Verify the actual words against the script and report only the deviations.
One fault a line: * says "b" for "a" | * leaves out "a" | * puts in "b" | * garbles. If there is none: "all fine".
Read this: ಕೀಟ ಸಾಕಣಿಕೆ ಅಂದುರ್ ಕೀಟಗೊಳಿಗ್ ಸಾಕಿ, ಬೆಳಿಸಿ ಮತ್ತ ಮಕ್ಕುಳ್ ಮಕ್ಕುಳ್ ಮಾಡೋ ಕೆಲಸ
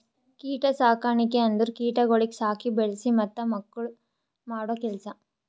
* leaves out "ಮಕ್ಕುಳ್"